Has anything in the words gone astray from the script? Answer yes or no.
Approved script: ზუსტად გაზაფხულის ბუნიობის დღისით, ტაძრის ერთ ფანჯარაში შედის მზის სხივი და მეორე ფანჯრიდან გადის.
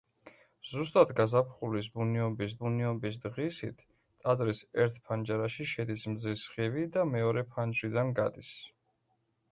yes